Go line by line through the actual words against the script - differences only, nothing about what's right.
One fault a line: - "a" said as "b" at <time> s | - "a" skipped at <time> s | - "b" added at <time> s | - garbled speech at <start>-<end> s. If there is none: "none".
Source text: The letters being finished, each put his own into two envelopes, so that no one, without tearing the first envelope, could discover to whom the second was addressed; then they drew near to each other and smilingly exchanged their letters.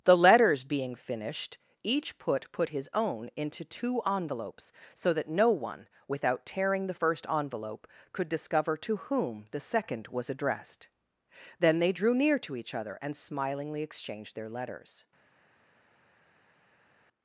- "put" added at 2.5 s